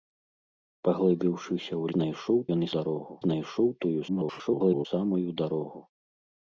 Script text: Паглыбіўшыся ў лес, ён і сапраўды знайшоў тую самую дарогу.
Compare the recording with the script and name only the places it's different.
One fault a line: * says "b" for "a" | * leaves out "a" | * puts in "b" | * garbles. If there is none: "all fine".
* says "знайшоў" for "лес"
* says "дарогу" for "сапраўды"
* garbles